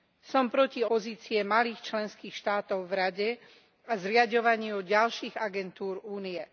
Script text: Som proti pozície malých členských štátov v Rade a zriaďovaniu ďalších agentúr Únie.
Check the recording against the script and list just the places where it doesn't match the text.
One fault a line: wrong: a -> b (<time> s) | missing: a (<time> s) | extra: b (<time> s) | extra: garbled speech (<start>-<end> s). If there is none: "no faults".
no faults